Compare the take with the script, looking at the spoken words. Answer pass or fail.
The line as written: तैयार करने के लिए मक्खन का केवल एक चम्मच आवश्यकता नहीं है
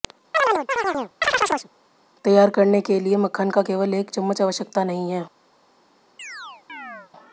pass